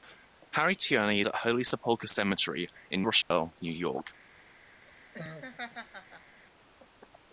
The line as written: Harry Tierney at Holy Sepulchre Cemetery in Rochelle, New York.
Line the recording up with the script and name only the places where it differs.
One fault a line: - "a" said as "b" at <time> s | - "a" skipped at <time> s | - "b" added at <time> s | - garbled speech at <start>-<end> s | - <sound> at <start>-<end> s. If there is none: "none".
- dropout at 3.2-3.3 s
- laugh at 4.8-6.4 s